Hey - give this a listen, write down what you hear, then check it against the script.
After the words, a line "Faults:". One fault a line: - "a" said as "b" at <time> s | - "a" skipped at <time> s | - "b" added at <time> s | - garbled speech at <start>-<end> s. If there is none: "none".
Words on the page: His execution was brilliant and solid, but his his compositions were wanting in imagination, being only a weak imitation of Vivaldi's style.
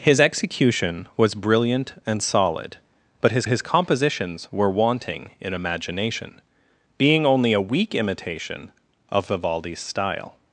His execution was brilliant and solid, but his his compositions were wanting in imagination, being only a weak imitation of Vivaldi's style.
Faults:
none